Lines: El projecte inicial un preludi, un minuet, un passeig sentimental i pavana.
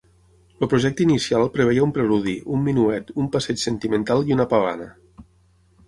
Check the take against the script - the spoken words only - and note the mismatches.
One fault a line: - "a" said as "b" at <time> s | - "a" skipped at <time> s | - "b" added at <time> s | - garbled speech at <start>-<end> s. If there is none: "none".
- "preveia" added at 1.6 s
- "una" added at 4.4 s